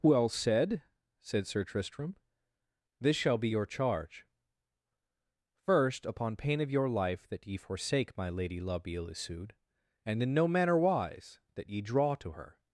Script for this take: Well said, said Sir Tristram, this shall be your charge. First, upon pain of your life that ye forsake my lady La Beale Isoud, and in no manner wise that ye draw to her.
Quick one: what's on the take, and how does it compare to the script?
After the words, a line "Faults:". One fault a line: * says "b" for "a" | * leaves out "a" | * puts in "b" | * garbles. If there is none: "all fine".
Well said, said Sir Tristram, this shall be your charge. First, upon pain of your life that ye forsake my lady La Beale Isoud, and in no manner wise that ye draw to her.
Faults:
all fine